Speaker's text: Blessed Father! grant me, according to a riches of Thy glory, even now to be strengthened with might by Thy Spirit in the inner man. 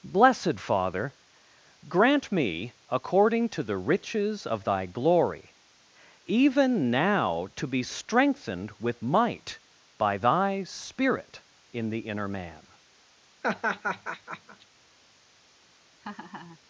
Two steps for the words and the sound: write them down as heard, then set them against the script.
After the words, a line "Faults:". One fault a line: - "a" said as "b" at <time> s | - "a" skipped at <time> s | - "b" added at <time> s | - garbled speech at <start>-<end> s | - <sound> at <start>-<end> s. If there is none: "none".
Blessed Father! grant me, according to the riches of Thy glory, even now to be strengthened with might by Thy Spirit in the inner man.
Faults:
- "a" said as "the" at 3.6 s
- laugh at 13.4-14.7 s
- laugh at 16.0-16.6 s